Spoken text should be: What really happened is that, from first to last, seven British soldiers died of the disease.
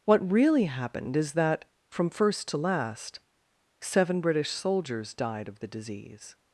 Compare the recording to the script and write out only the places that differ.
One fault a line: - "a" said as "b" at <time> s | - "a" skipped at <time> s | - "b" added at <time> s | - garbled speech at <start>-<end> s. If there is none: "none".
none